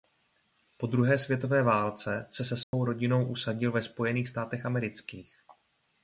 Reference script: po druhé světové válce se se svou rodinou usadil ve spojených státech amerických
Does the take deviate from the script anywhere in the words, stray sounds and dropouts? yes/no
yes